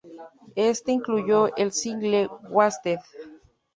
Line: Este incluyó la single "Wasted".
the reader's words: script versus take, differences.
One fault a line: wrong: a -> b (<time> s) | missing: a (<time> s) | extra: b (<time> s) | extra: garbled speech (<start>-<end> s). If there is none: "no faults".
wrong: la -> el (1.6 s)